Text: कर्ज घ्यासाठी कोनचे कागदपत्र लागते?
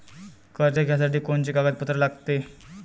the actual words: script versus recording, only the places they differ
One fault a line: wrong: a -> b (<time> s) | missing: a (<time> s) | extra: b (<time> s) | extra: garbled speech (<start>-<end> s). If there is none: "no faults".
no faults